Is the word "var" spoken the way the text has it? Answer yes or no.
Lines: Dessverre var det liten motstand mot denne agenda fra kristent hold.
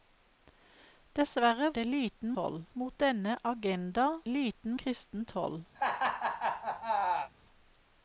no